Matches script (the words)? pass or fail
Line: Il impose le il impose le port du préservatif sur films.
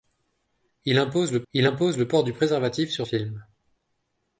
pass